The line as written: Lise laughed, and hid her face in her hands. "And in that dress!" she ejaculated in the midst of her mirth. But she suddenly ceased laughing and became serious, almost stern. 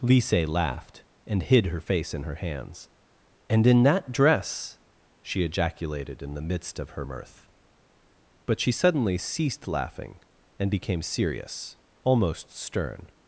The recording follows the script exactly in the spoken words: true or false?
true